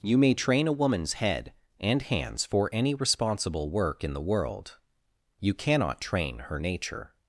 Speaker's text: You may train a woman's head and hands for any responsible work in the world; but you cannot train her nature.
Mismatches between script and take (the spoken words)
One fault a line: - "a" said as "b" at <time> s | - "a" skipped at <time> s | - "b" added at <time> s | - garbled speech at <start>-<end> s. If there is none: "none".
- "but" skipped at 4.8 s